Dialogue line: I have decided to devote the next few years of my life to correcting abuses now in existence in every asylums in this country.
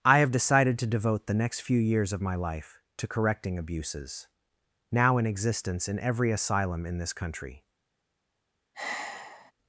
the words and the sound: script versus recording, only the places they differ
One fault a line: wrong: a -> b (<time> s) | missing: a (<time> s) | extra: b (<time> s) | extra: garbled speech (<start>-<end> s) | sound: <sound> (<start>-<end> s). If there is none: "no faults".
wrong: asylums -> asylum (6.3 s)
sound: sigh (8.7-9.5 s)